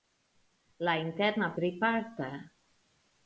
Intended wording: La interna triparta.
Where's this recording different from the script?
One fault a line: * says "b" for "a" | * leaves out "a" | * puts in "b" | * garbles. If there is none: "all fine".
all fine